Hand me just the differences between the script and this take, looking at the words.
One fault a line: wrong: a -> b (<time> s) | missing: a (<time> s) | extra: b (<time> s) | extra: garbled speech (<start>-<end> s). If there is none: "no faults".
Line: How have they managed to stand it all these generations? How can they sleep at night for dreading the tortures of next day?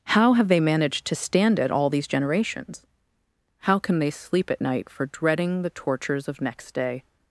no faults